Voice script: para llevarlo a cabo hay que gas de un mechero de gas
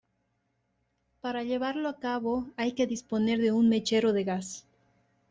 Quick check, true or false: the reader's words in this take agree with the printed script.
false